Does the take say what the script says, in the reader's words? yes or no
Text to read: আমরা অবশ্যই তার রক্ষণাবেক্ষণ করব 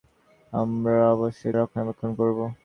no